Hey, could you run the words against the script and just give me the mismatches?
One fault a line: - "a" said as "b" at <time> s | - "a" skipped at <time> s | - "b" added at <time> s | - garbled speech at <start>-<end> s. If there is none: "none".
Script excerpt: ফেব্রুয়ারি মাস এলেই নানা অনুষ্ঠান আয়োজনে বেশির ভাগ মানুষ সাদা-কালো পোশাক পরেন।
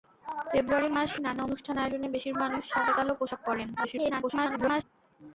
- "এলেই" skipped at 1.1 s
- "ভাগ" skipped at 2.3 s
- garbled speech at 3.8-4.8 s